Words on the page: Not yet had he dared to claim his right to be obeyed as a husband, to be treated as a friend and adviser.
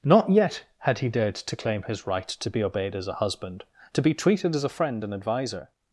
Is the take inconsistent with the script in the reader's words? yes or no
no